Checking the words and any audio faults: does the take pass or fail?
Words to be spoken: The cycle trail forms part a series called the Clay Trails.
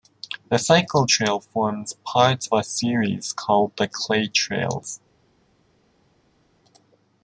pass